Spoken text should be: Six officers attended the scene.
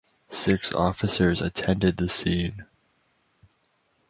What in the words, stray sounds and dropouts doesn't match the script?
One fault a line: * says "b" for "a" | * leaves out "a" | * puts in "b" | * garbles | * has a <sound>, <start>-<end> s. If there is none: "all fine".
all fine